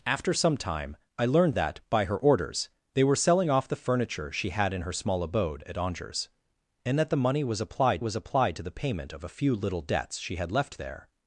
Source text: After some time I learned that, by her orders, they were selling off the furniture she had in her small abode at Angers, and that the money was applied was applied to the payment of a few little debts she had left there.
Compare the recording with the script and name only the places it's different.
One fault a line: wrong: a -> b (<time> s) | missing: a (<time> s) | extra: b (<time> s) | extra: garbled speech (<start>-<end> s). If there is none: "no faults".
no faults